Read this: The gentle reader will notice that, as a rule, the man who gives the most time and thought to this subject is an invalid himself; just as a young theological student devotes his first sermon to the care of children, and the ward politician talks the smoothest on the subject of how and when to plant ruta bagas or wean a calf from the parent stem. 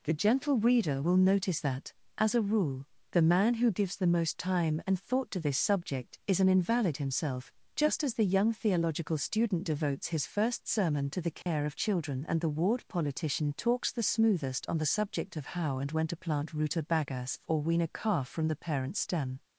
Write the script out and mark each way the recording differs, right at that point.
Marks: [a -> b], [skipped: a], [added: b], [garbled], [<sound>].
The gentle reader will notice that, as a rule, the man who gives the most time and thought to this subject is an invalid himself; just as [a -> the] young theological student devotes his first sermon to the care [dropout] of children, and the ward politician talks the smoothest on the subject of how and when to plant ruta bagas or wean a calf from the parent stem.